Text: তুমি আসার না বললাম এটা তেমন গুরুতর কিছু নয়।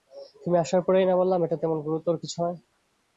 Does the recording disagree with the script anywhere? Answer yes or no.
yes